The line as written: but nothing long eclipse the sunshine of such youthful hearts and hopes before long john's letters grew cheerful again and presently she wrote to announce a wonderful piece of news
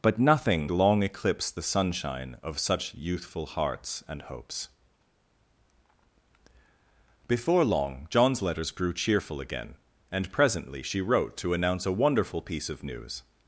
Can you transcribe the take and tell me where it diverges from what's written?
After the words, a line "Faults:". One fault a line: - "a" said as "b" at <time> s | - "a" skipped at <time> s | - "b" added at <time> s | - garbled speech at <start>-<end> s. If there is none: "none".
but nothing long eclipse the sunshine of such youthful hearts and hopes before long john's letters grew cheerful again and presently she wrote to announce a wonderful piece of news
Faults:
none